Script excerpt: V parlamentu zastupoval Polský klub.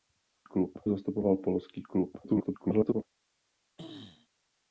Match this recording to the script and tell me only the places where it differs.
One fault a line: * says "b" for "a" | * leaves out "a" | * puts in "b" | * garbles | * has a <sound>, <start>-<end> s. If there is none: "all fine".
* says "klub" for "parlamentu"
* garbles
* has a throat clearing, 3.8-4.3 s